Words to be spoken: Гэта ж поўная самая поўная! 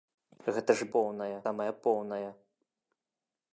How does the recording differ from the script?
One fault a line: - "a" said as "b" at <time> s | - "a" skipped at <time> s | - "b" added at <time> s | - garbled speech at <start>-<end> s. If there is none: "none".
none